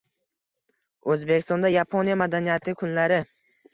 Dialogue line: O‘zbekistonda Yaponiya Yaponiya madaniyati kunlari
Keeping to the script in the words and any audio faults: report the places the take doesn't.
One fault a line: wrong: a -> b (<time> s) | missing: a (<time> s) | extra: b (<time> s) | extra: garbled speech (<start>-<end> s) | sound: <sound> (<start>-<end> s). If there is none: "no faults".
missing: Yaponiya (2.2 s)